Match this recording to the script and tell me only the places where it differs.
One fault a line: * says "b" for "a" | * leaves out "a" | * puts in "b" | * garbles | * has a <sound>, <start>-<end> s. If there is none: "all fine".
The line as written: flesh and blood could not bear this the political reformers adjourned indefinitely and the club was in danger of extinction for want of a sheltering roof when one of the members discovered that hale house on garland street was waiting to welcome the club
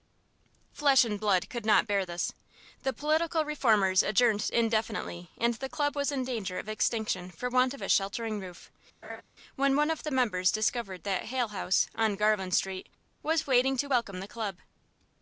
* has a laugh, 9.0-9.2 s